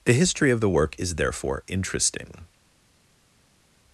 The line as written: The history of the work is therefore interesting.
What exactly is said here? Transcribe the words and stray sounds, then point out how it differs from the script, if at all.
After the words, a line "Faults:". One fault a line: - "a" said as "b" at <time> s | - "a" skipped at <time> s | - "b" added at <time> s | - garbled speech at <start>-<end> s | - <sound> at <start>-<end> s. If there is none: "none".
The history of the work is therefore interesting.
Faults:
none